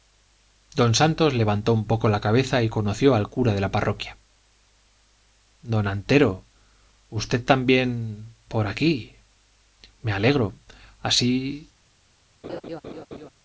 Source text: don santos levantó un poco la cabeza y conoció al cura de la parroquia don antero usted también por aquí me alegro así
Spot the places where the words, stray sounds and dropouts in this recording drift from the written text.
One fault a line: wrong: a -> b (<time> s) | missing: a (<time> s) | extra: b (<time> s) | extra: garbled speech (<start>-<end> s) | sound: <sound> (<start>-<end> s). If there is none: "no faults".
sound: laugh (12.4-13.3 s)